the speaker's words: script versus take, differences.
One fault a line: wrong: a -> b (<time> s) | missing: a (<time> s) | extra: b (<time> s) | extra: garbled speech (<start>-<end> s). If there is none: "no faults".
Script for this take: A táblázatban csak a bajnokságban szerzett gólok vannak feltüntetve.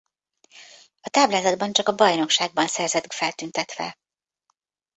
missing: gólok vannak (3.1 s)